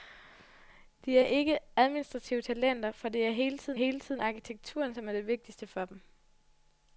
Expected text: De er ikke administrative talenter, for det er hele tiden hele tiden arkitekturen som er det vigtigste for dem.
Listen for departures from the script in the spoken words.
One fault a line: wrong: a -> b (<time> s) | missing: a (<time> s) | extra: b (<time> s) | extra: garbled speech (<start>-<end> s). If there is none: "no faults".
no faults